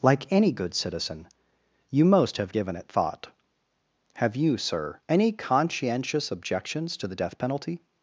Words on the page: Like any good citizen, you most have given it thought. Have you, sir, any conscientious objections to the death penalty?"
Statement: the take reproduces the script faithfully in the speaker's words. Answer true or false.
true